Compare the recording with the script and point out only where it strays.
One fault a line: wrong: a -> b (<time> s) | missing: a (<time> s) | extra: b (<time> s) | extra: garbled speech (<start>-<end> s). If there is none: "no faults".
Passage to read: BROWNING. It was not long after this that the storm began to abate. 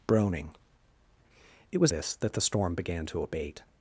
missing: not long after (1.9 s)